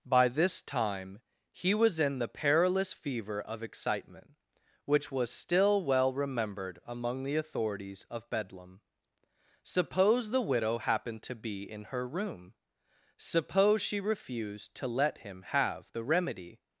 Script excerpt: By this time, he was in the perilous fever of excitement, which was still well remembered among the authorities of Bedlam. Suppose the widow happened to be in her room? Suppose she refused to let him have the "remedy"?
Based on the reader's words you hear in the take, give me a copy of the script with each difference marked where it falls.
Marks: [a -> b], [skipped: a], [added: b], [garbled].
By this time, he was in the perilous fever of excitement, which was still well remembered among the authorities of Bedlam. Suppose the widow happened to be in her room? Suppose she refused to let him have the "remedy"?